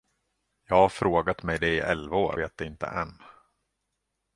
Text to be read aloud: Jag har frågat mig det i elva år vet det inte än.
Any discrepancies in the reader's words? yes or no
no